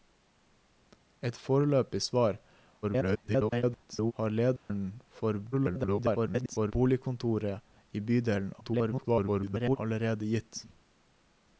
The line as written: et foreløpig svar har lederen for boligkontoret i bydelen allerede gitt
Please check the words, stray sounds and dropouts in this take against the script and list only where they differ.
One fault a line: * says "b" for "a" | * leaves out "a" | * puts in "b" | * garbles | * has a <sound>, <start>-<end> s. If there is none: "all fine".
* garbles
* has a dropout, 4.6-4.7 s
* garbles
* garbles